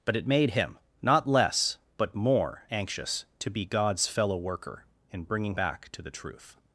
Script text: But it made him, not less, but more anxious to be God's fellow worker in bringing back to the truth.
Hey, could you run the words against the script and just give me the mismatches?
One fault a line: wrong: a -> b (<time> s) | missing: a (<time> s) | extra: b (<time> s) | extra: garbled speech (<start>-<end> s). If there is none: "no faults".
no faults